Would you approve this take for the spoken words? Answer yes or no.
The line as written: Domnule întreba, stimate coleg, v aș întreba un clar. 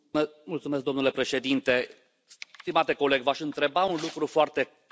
no